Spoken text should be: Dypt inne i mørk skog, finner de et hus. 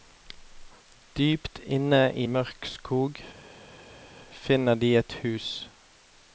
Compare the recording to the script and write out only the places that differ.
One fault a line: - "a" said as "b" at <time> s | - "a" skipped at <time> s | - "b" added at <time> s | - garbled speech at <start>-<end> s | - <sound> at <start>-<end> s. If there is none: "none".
none